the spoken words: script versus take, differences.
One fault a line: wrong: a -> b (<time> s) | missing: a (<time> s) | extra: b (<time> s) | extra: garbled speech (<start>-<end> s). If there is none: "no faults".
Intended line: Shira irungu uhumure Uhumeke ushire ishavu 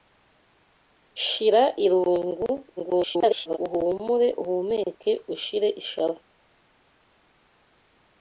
extra: garbled speech (2.8-3.6 s)